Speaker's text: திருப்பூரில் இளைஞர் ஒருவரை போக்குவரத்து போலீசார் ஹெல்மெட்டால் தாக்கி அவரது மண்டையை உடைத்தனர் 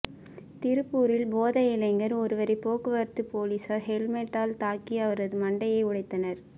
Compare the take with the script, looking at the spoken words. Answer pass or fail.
fail